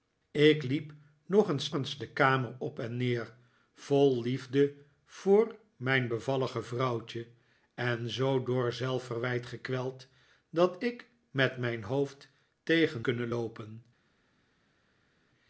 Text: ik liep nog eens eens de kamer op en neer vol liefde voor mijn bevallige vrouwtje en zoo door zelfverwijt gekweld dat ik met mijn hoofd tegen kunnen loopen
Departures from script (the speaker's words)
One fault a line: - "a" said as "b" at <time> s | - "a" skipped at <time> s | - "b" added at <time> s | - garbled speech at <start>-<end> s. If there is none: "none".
none